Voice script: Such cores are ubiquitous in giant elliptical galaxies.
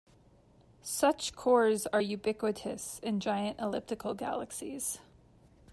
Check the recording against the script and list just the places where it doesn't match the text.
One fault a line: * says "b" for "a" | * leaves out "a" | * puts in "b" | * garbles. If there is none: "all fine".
all fine